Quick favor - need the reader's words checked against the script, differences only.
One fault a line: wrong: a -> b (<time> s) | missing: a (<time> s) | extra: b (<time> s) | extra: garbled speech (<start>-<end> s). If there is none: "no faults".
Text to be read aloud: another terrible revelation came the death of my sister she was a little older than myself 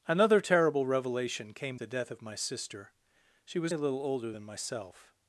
no faults